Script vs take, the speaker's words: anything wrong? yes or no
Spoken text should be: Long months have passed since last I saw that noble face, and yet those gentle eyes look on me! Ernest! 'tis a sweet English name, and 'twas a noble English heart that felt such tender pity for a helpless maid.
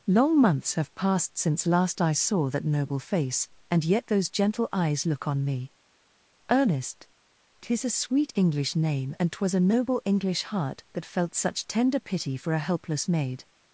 no